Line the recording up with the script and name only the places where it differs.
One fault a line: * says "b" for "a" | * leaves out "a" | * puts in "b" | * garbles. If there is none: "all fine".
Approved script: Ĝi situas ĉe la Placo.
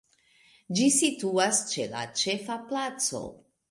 * puts in "Ĉefa"